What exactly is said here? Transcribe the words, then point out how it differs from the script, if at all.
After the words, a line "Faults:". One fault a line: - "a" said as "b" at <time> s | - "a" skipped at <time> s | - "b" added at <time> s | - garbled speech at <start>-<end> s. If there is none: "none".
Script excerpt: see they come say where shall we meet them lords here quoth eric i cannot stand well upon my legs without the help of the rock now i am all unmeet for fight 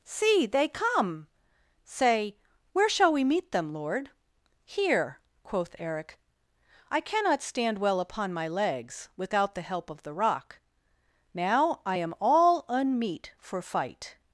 see they come say where shall we meet them lord here quoth eric i cannot stand well upon my legs without the help of the rock now i am all unmeet for fight
Faults:
- "lords" said as "lord" at 3.7 s